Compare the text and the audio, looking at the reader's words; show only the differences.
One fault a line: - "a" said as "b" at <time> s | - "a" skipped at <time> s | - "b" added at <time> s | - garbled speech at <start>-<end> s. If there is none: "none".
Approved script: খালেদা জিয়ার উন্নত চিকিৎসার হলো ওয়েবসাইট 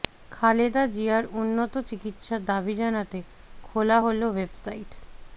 - "দাবি জানাতে খোলা" added at 2.4 s